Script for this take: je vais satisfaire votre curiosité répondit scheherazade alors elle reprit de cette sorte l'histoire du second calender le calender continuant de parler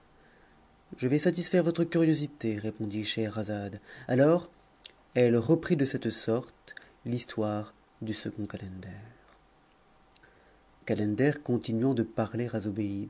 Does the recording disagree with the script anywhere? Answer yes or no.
yes